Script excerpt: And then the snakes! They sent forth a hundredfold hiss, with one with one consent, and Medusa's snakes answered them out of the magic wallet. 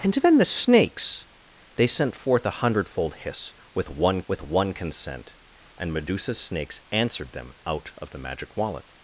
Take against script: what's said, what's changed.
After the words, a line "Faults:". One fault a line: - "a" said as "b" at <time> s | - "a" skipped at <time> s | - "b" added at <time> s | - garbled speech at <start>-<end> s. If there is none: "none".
And then the snakes! They sent forth a hundredfold hiss, with one with one consent, and Medusa's snakes answered them out of the magic wallet.
Faults:
none